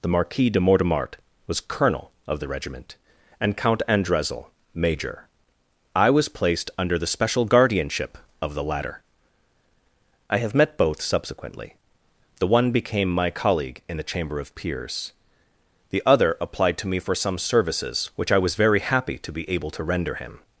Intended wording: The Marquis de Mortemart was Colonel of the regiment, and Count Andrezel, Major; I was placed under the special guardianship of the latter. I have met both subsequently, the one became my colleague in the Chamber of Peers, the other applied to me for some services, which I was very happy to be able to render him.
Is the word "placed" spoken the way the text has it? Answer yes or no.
yes